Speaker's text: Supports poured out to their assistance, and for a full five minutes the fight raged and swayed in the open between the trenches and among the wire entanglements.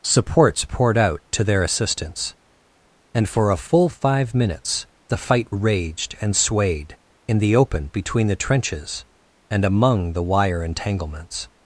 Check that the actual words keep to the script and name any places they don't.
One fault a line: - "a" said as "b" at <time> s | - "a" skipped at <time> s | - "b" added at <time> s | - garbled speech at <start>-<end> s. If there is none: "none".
none